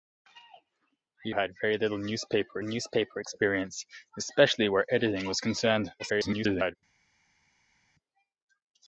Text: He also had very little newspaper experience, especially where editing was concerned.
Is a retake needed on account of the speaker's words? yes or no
yes